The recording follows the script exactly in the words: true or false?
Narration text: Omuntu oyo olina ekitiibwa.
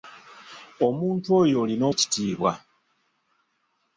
true